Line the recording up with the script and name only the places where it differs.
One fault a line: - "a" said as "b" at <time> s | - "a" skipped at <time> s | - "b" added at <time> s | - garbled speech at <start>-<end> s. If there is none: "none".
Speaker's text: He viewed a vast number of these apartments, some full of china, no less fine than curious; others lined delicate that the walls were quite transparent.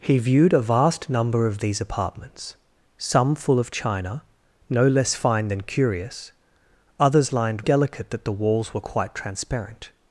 none